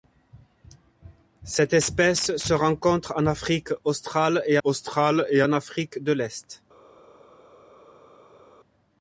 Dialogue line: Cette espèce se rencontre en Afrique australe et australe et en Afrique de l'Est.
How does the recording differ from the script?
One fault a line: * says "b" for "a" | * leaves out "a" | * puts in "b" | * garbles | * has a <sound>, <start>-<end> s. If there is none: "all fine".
all fine